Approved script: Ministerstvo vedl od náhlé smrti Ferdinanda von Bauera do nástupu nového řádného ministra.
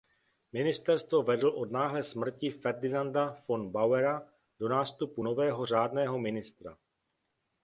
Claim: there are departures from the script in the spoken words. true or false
false